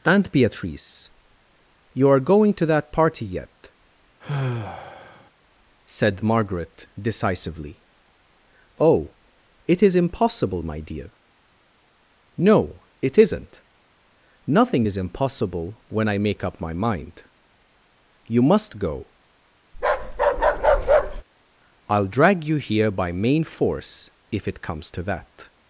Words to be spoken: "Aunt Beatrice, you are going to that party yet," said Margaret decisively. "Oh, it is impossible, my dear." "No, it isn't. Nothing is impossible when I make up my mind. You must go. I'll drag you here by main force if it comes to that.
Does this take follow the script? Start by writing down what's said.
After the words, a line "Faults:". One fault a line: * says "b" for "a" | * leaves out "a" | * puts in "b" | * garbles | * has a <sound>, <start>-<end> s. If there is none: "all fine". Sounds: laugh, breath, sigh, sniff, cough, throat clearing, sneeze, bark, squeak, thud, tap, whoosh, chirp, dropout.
"Aunt Beatrice, you are going to that party yet," said Margaret decisively. "Oh, it is impossible, my dear." "No, it isn't. Nothing is impossible when I make up my mind. You must go. I'll drag you here by main force if it comes to that.
Faults:
* has a sigh, 4.2-5.3 s
* has a bark, 19.7-21.2 s